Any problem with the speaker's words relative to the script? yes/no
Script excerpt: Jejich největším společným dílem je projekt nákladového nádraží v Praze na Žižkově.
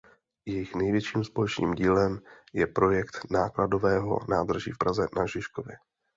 no